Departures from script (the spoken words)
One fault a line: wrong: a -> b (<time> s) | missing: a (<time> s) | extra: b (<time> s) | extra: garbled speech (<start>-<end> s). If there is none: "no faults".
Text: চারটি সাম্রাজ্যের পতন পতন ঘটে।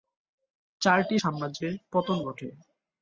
missing: পতন (2.2 s)